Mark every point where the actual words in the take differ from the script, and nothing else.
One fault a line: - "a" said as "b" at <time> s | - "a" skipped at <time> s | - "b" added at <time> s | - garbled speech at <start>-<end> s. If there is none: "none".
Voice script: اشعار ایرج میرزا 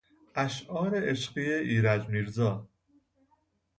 - "عشقی" added at 1.1 s